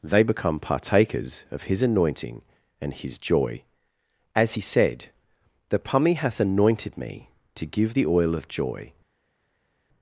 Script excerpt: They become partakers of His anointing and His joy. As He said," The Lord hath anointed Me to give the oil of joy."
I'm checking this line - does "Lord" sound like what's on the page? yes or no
no